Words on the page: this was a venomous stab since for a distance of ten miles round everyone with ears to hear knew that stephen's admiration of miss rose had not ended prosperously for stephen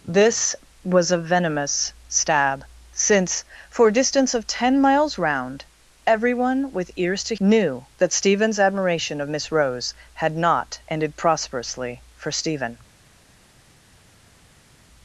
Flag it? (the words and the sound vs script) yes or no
yes